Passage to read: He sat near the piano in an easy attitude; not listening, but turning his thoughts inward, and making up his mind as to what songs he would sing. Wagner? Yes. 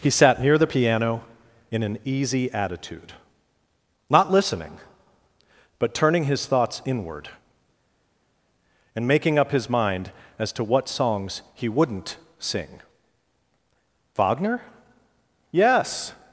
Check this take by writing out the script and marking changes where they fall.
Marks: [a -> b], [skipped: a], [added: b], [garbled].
He sat near the piano in an easy attitude; not listening, but turning his thoughts inward, and making up his mind as to what songs he [would -> wouldn't] sing. Wagner? Yes.